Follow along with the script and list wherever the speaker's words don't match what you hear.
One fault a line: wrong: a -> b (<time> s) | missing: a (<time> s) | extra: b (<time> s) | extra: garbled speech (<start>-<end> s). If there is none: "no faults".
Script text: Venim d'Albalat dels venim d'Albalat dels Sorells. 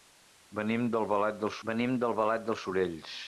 no faults